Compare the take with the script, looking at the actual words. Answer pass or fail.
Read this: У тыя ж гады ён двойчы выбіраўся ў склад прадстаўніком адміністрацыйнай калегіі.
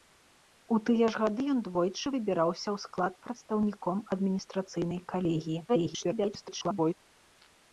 fail